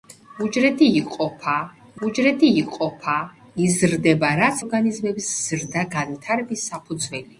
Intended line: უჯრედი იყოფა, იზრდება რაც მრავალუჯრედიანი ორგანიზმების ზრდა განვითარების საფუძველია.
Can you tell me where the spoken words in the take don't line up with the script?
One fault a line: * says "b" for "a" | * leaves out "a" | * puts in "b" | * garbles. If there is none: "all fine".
* puts in "უჯრედი იყოფა"
* leaves out "მრავალუჯრედიანი"